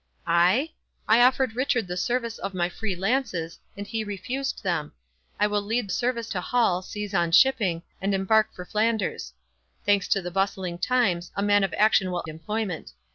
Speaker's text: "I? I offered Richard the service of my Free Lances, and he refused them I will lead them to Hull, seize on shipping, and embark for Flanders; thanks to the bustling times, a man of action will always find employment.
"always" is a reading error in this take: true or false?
true